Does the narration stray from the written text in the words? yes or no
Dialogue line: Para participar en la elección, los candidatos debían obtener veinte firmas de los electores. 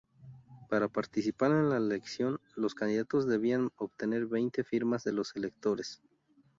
no